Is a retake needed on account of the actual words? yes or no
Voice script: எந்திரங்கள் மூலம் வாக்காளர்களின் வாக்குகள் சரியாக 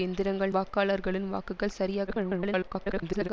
yes